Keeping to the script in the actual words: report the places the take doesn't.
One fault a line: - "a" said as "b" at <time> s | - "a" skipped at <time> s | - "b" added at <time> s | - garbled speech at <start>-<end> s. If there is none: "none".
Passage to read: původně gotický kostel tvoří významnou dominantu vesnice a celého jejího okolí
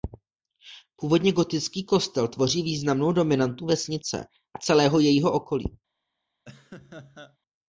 none